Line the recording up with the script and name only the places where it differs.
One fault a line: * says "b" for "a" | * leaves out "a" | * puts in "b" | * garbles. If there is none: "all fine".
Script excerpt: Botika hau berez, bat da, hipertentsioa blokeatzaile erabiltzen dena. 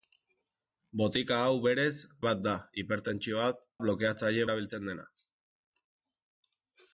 all fine